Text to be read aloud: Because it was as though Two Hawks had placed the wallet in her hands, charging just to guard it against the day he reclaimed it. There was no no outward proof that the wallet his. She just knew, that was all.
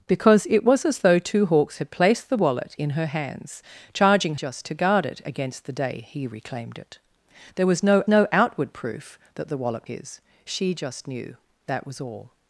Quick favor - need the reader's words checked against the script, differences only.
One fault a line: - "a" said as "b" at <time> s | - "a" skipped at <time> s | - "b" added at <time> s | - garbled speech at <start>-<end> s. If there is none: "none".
none